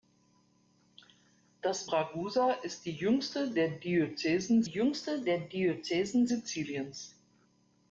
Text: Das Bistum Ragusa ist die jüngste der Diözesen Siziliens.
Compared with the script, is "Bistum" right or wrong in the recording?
wrong